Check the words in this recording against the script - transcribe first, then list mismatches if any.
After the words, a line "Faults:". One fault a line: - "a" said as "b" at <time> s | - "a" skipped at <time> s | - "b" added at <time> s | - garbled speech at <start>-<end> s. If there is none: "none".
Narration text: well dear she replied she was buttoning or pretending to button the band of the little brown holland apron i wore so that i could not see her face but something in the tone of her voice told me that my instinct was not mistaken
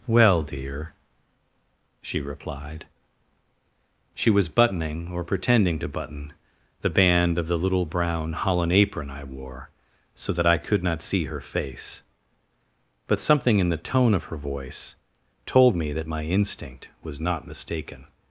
well dear she replied she was buttoning or pretending to button the band of the little brown holland apron i wore so that i could not see her face but something in the tone of her voice told me that my instinct was not mistaken
Faults:
none